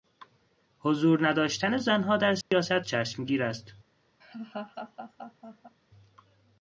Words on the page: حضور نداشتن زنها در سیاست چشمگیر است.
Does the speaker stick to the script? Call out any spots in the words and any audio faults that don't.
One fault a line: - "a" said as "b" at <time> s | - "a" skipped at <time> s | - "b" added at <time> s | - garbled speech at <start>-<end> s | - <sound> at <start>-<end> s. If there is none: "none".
- dropout at 2.4-2.5 s
- laugh at 4.2-5.8 s